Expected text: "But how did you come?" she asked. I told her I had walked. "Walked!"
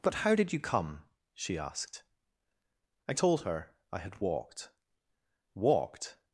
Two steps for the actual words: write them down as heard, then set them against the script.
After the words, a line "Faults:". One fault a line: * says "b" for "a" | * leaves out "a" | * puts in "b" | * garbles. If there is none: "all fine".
"But how did you come?" she asked. I told her I had walked. "Walked!"
Faults:
all fine